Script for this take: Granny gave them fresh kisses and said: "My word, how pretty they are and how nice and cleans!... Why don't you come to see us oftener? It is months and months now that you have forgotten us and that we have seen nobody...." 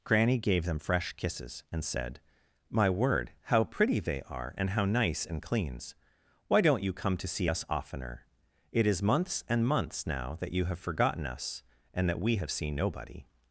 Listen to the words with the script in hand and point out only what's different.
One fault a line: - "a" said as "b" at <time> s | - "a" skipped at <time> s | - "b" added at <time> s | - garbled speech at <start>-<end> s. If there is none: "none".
none